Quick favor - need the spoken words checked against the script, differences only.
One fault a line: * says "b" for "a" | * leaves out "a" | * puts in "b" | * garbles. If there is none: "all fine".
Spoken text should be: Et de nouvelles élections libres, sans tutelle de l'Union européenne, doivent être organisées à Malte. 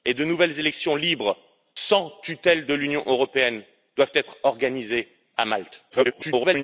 * garbles